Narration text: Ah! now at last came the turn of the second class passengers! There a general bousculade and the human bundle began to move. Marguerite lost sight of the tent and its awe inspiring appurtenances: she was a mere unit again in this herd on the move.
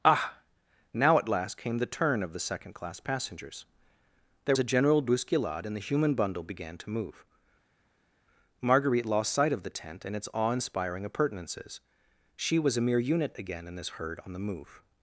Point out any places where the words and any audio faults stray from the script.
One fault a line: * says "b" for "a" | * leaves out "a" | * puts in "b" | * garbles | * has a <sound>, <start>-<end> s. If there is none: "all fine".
all fine